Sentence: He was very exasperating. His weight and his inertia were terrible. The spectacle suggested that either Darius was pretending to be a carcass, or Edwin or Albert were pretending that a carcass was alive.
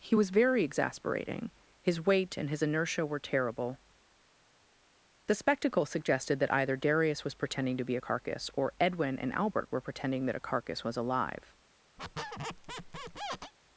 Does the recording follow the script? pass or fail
fail